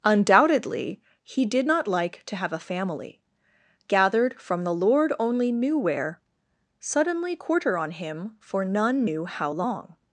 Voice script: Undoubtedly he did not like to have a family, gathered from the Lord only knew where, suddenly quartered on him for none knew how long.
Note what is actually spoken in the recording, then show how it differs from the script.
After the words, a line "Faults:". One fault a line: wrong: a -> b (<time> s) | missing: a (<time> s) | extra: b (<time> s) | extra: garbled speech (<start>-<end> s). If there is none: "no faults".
Undoubtedly he did not like to have a family, gathered from the Lord only knew where, suddenly quarter on him for none knew how long.
Faults:
wrong: quartered -> quarter (7.3 s)